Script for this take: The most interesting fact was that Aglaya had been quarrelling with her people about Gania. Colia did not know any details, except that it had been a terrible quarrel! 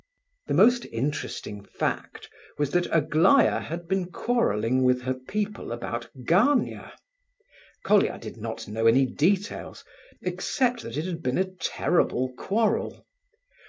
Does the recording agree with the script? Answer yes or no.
yes